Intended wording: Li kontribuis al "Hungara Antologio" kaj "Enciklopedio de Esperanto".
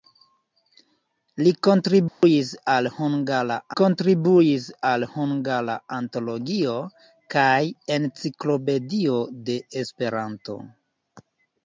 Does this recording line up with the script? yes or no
no